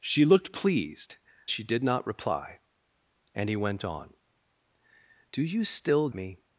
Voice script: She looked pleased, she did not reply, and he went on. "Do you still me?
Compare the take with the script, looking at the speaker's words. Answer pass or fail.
pass